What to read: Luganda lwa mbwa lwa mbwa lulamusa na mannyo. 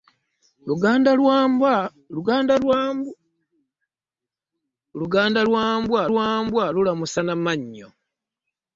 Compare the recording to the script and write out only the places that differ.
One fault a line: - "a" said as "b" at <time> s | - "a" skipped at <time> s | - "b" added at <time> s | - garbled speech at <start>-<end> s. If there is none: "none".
none